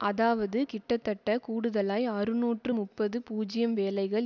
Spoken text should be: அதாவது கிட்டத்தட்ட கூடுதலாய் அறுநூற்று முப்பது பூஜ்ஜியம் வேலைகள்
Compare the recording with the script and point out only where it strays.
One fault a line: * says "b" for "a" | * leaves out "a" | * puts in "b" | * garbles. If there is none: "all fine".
all fine